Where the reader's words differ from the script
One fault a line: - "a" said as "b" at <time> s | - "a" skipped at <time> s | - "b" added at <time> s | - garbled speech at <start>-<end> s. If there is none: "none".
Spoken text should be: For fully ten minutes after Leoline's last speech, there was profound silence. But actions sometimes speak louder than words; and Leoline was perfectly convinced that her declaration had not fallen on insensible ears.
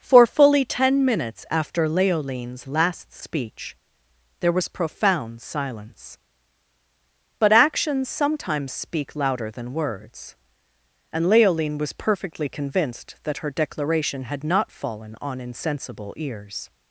none